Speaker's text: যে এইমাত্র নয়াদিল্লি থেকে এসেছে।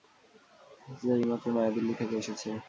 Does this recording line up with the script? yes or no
yes